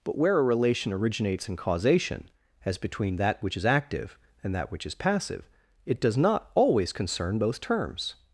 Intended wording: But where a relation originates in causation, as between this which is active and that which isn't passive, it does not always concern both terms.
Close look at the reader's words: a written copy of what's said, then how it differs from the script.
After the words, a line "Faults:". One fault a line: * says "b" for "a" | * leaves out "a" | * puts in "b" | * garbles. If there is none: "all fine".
But where a relation originates in causation, as between that which is active and that which is passive, it does not always concern both terms.
Faults:
* says "that" for "this"
* says "is" for "isn't"